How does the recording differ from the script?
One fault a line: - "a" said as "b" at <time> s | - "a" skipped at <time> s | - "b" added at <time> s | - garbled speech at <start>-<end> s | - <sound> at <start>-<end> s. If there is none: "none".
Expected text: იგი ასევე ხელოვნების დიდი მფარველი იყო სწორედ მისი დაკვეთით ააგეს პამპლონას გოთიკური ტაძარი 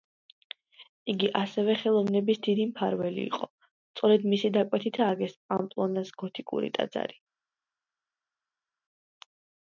none